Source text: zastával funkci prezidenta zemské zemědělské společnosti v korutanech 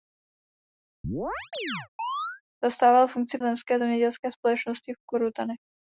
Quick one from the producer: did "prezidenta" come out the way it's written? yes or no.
no